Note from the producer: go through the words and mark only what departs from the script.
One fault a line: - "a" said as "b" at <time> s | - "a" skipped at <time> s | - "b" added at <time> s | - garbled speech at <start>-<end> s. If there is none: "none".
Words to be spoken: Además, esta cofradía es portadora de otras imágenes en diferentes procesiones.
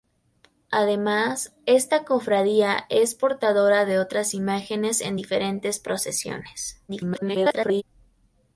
- garbled speech at 6.9-7.8 s